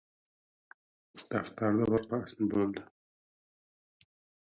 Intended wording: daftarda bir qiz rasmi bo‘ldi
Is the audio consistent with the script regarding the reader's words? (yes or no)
no